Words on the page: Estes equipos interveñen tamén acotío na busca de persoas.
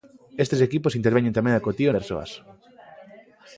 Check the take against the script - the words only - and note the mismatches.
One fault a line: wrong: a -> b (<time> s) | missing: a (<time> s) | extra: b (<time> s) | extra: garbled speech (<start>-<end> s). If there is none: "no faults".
missing: na busca de (1.9 s)